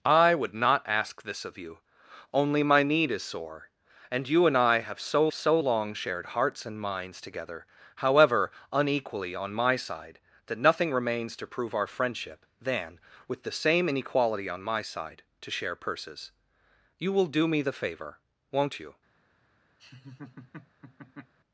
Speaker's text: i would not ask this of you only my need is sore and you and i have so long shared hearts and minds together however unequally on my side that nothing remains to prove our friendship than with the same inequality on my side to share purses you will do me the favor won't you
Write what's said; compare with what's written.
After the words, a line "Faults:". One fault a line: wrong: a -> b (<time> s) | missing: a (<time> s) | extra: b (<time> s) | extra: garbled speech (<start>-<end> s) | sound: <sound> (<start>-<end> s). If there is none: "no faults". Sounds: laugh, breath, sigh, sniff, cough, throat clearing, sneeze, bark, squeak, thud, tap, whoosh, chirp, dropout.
i would not ask this of you only my need is sore and you and i have so so long shared hearts and minds together however unequally on my side that nothing remains to prove our friendship than with the same inequality on my side to share purses you will do me the favor won't you
Faults:
extra: so (5.3 s)
sound: laugh (19.8-21.3 s)